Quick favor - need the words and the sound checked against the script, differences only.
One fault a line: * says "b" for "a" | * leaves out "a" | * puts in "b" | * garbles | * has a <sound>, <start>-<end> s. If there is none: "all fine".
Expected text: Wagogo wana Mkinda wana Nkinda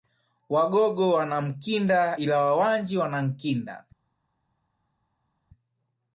* puts in "ila Wawanji"